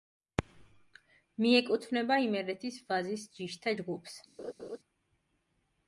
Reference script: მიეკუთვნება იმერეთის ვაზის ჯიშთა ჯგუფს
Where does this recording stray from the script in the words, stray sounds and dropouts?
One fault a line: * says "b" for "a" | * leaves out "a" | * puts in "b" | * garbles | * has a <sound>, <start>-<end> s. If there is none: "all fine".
* has a laugh, 4.4-4.8 s